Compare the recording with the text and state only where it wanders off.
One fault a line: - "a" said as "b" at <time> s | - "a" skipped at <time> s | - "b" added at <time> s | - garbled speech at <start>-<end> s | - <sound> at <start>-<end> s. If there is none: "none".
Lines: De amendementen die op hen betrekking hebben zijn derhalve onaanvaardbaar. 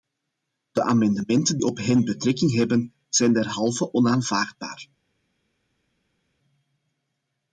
- "die" skipped at 1.6 s